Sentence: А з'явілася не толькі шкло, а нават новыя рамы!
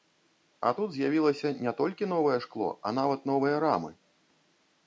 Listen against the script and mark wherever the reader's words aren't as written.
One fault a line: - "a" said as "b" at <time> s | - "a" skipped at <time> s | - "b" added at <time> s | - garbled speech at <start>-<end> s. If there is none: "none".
- "тут" added at 0.8 s
- "новае" added at 2.1 s